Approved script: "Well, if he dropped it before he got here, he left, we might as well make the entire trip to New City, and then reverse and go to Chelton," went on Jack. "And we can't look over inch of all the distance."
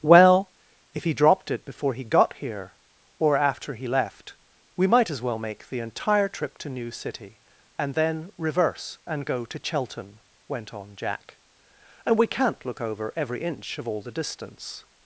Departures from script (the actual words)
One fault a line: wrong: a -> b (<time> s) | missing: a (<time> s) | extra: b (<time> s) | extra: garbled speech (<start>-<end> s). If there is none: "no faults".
extra: or after (3.2 s)
extra: every (13.2 s)